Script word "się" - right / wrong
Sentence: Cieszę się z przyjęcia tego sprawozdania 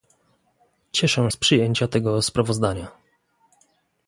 wrong